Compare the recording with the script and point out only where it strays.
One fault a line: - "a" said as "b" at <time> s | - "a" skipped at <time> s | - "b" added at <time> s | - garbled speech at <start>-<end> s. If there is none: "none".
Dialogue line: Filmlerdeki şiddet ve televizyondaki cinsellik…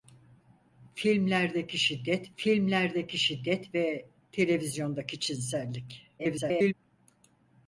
- "filmlerdeki şiddet" added at 2.4 s
- garbled speech at 6.2-6.7 s